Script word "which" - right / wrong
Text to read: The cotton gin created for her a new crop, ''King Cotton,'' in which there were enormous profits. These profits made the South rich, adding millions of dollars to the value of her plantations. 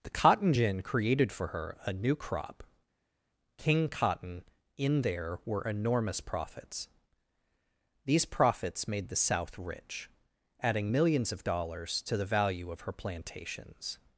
wrong